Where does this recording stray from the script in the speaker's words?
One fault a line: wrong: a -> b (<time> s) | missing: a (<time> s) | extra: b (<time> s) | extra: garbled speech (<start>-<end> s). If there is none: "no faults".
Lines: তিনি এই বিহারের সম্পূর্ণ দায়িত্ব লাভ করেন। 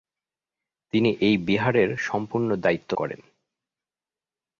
missing: লাভ (2.9 s)